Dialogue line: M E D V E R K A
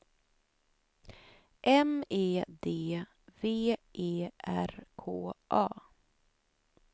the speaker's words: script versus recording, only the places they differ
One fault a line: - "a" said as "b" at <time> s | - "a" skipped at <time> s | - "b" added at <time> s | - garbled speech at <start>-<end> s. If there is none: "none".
none